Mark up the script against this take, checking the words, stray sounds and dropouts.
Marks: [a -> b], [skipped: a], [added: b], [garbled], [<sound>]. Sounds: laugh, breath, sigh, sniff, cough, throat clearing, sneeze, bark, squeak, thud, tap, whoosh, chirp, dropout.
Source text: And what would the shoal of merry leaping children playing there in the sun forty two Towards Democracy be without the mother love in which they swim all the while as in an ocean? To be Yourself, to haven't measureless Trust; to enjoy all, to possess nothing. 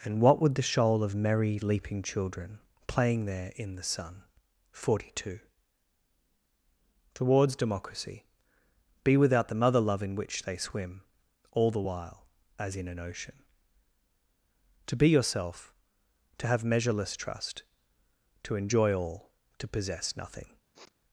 And what would the shoal of merry leaping children playing there in the sun forty two Towards Democracy be without the mother love in which they swim all the while as in an ocean? To be Yourself, to [haven't -> have] measureless Trust; to enjoy all, to possess nothing. [sniff]